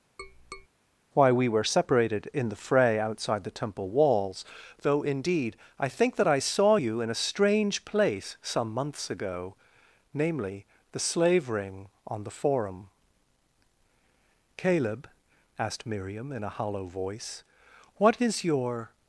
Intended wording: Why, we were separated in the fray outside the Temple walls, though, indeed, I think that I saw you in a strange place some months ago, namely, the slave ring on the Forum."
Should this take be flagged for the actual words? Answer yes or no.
yes